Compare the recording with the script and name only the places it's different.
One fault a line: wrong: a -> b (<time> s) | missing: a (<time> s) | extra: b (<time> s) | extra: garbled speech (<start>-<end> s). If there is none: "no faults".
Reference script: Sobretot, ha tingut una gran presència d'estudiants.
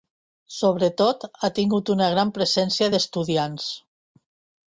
no faults